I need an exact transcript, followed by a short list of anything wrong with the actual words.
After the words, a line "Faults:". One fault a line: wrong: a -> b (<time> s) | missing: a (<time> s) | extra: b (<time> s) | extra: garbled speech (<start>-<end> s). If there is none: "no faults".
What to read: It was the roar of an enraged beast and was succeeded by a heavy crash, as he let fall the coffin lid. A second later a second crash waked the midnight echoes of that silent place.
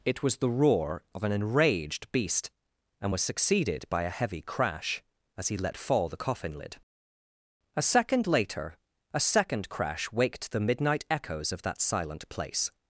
It was the roar of an enraged beast and was succeeded by a heavy crash, as he let fall the coffin lid. A second later a second crash waked the midnight echoes of that silent place.
Faults:
no faults